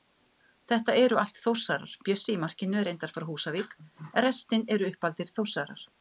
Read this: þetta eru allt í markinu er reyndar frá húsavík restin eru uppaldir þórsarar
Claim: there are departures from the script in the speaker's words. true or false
true